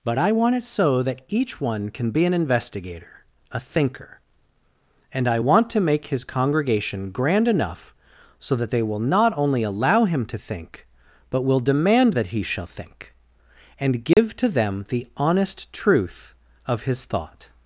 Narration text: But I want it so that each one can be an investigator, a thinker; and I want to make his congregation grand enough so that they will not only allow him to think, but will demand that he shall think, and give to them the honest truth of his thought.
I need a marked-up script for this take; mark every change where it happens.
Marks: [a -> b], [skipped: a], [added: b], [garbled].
But I want it so that each one can be an investigator, a thinker; and I want to make his congregation grand enough so that they will not only allow him to think, but will demand that he shall think, and give to them the honest truth of his thought.